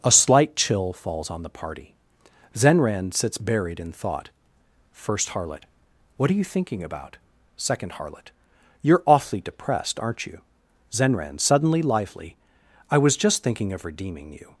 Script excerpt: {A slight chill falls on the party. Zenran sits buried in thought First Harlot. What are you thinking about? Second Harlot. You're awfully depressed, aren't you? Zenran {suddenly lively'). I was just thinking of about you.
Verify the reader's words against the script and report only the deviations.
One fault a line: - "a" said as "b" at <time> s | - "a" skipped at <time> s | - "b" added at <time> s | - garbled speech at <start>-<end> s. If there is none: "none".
- "about" said as "redeeming" at 13.8 s